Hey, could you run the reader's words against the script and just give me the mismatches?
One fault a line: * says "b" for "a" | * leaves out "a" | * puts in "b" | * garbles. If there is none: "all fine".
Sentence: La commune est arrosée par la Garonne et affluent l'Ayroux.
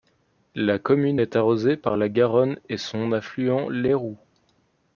* puts in "son"